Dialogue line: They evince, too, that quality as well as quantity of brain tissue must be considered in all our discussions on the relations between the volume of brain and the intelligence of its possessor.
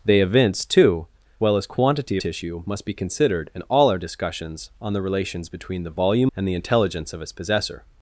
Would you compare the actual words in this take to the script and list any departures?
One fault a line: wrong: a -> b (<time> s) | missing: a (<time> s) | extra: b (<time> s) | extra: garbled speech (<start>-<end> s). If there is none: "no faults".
missing: that quality as (1.1 s)
missing: of brain (2.2 s)
missing: of brain (6.3 s)